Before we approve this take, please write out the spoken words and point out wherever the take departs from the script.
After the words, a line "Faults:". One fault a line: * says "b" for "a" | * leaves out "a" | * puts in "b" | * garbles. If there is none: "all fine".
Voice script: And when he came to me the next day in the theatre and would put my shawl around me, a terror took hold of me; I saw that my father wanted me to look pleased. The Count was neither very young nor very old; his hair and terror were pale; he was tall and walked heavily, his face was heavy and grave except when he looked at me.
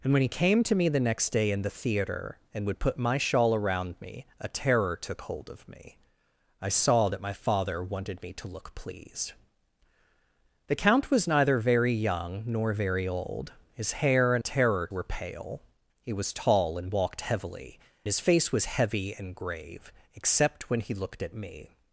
And when he came to me the next day in the theatre and would put my shawl around me, a terror took hold of me; I saw that my father wanted me to look pleased. The Count was neither very young nor very old; his hair and terror were pale; he was tall and walked heavily, his face was heavy and grave except when he looked at me.
Faults:
all fine